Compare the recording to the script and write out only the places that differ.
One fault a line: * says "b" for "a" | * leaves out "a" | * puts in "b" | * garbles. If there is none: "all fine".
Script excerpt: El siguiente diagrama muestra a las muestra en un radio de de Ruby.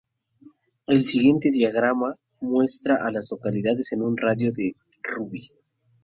* says "localidades" for "muestra"